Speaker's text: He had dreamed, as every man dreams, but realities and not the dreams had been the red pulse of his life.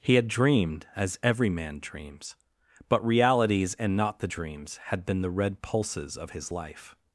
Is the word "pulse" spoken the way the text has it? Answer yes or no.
no